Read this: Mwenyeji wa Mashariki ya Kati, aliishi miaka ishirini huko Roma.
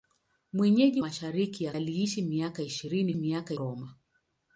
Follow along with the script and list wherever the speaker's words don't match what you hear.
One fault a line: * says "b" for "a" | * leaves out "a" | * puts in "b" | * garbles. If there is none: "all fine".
* leaves out "wa"
* leaves out "Kati"
* says "miaka" for "huko"